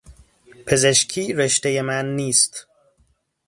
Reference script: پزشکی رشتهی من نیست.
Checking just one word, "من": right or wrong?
right